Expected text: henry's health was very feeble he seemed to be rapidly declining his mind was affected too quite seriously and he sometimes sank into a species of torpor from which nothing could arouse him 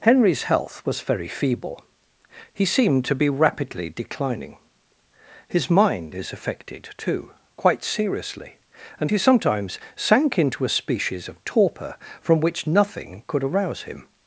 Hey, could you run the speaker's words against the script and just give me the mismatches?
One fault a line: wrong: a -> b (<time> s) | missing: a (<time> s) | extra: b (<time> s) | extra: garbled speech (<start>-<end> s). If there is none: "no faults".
wrong: was -> is (6.1 s)